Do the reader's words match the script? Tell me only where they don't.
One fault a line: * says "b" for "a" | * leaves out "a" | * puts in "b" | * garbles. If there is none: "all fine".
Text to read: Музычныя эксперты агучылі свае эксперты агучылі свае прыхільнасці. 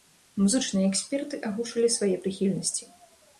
* leaves out "эксперты агучылі свае"